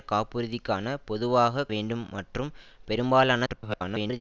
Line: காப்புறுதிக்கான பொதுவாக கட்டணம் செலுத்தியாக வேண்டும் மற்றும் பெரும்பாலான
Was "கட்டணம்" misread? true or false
true